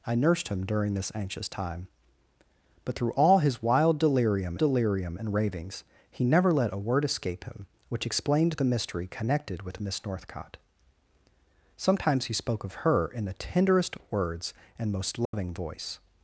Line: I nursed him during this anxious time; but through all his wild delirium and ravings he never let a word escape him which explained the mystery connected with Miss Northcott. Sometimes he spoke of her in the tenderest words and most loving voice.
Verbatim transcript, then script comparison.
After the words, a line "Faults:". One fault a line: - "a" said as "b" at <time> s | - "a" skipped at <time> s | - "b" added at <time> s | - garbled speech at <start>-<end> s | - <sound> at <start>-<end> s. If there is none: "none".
I nursed him during this anxious time; but through all his wild delirium delirium and ravings he never let a word escape him which explained the mystery connected with Miss Northcott. Sometimes he spoke of her in the tenderest words and most loving voice.
Faults:
- "delirium" added at 4.6 s
- dropout at 15.3-15.3 s